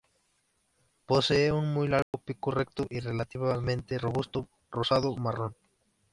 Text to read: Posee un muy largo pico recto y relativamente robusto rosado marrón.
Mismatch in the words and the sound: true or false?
true